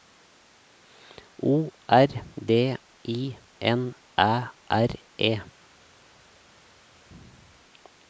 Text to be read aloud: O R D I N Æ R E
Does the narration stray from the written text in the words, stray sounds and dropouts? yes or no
no